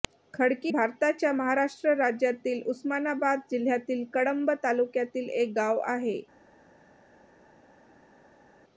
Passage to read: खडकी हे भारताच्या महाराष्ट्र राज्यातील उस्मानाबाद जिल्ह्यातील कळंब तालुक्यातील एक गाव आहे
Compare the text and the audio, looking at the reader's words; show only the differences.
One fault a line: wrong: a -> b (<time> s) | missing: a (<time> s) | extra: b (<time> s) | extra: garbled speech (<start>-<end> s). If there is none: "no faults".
missing: हे (0.7 s)